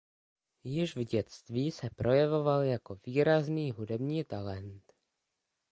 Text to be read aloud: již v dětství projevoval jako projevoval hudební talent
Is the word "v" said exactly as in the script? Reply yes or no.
yes